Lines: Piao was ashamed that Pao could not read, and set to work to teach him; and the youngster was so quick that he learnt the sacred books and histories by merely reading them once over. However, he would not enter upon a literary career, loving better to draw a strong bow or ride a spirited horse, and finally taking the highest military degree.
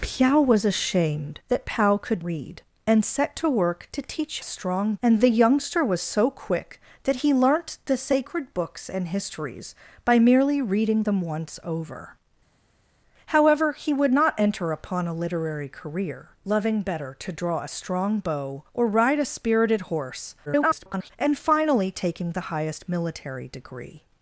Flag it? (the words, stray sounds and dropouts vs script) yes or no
yes